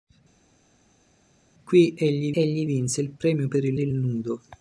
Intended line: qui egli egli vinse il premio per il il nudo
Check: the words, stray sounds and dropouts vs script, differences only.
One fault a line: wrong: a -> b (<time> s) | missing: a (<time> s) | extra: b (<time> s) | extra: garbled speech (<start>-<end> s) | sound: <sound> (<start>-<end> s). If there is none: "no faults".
no faults